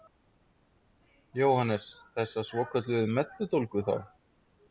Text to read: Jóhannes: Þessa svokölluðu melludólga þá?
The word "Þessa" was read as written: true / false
true